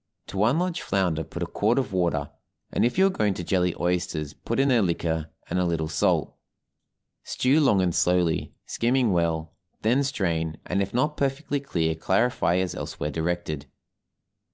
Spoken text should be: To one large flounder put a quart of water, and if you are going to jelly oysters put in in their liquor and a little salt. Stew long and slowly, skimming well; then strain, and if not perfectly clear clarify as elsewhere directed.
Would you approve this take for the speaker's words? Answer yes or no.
no